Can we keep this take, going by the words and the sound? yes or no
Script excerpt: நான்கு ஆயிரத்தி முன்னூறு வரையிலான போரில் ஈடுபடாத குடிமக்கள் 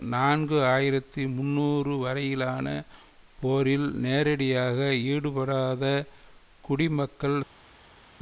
no